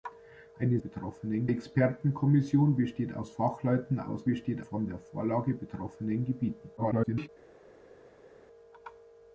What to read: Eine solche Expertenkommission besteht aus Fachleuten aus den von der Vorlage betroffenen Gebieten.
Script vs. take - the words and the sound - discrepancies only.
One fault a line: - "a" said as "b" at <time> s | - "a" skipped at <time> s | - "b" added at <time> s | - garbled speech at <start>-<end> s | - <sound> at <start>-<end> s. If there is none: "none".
- "solche" said as "betroffenen" at 0.8 s
- "den" said as "besteht" at 4.3 s
- garbled speech at 6.8-7.3 s